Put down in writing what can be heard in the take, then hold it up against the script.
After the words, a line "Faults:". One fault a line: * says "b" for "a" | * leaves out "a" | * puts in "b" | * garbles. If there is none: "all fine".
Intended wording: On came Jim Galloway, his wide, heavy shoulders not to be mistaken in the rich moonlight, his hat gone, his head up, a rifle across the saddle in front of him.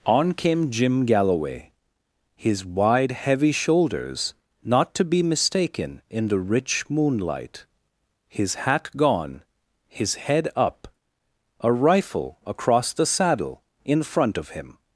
On came Jim Galloway, his wide, heavy shoulders not to be mistaken in the rich moonlight, his hat gone, his head up, a rifle across the saddle in front of him.
Faults:
all fine